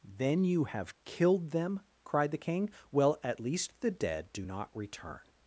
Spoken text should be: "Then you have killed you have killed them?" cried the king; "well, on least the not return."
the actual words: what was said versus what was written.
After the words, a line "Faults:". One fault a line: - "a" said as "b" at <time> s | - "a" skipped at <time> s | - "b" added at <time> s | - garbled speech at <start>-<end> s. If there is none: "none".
"Then you have killed them?" cried the king; "well, at least the dead do not return."
Faults:
- "you have killed" skipped at 1.5 s
- "on" said as "at" at 3.2 s
- "dead do" added at 3.9 s